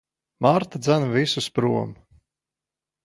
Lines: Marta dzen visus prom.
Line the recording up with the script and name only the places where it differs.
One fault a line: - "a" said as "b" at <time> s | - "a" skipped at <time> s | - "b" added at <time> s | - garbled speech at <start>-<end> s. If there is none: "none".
none